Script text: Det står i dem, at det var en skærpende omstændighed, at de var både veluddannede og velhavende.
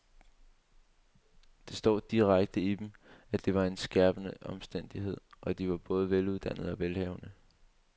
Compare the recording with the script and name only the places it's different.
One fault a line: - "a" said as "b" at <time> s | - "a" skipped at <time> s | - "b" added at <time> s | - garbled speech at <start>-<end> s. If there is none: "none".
- "direkte" added at 2.1 s